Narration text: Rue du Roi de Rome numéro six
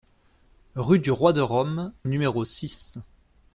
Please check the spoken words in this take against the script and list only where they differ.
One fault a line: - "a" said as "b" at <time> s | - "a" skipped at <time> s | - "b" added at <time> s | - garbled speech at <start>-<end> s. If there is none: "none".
none